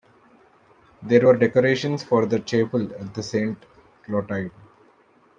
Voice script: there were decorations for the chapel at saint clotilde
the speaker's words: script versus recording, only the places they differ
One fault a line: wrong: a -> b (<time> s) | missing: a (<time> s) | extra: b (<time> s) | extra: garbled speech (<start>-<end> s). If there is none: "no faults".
no faults